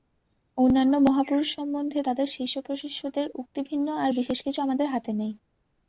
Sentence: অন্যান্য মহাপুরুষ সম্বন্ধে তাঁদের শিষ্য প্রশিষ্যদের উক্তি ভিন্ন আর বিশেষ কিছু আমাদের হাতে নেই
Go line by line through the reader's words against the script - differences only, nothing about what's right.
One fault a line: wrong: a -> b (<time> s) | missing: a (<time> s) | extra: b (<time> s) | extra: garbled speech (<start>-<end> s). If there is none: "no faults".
no faults